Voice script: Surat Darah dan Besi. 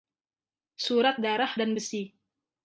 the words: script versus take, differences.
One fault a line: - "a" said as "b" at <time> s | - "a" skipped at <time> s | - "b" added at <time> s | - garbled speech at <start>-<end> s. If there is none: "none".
none